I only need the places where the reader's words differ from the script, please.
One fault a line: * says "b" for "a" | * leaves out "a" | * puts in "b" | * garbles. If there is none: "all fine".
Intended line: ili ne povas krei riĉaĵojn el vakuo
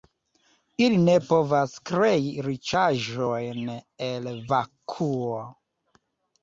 all fine